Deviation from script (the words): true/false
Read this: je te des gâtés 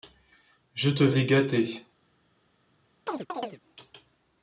false